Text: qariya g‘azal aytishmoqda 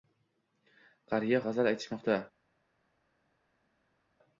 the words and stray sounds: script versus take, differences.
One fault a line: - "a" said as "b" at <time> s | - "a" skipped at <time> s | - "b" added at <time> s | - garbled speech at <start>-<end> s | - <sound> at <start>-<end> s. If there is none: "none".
none